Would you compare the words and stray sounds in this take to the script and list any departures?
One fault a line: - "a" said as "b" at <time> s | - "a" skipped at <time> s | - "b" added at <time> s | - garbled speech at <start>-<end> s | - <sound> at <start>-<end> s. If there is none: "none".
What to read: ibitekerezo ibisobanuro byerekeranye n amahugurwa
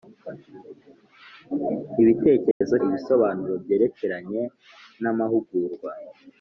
- dropout at 2.5-2.6 s